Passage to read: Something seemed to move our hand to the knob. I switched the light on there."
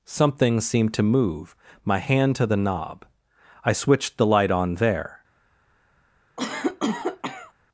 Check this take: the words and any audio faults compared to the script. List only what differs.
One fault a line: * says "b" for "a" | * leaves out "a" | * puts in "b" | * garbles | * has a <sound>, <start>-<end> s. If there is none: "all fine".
* says "my" for "our"
* has a cough, 6.4-7.5 s